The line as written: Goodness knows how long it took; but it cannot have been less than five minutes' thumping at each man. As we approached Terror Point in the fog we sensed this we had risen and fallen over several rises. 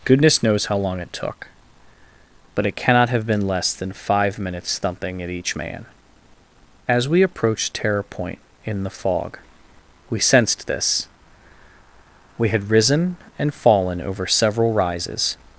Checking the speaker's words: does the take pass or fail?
pass